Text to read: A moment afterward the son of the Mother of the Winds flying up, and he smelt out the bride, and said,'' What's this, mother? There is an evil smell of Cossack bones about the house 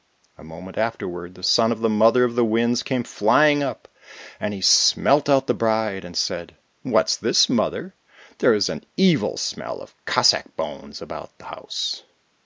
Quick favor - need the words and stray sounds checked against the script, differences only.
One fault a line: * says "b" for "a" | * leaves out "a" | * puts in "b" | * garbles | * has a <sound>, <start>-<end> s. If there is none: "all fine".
* puts in "came"